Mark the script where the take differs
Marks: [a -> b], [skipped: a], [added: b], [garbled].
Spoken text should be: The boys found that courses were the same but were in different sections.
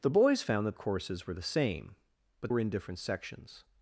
The boys found that courses were the same but were in different sections.